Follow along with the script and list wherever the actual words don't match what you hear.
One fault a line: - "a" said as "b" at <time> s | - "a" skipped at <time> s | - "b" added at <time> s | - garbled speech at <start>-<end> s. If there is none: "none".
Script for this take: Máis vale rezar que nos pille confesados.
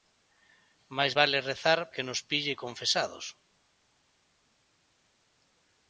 none